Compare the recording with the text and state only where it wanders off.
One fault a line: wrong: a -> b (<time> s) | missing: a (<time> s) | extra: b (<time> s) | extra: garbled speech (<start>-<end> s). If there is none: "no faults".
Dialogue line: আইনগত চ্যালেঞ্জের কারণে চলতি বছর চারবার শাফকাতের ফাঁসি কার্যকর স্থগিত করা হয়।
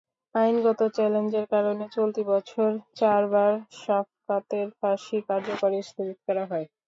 no faults